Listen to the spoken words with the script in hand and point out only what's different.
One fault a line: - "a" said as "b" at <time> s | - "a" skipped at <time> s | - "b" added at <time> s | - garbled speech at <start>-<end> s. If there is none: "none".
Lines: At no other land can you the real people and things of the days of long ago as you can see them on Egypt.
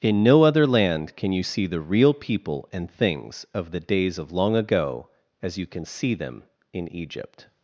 - "At" said as "In" at 0.0 s
- "see" added at 1.4 s
- "on" said as "in" at 6.7 s